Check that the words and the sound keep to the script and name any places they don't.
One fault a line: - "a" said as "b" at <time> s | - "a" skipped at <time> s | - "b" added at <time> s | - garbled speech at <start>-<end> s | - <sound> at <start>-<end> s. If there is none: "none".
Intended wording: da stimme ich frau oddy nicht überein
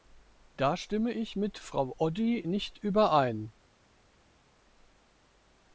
- "mit" added at 1.3 s